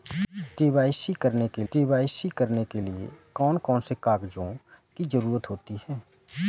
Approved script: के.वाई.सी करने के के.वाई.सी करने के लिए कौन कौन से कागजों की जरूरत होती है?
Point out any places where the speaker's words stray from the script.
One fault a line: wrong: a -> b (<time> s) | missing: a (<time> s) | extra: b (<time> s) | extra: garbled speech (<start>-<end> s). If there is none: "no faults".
no faults